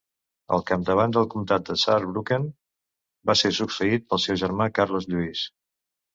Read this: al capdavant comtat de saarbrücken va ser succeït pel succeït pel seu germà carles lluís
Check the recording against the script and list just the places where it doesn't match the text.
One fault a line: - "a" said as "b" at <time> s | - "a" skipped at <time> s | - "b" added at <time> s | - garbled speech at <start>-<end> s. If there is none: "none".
- "del" added at 1.2 s
- "succeït pel" skipped at 4.2 s